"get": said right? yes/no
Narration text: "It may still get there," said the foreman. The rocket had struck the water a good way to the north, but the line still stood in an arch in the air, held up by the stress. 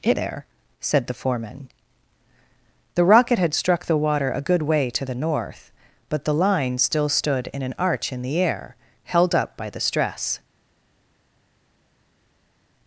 no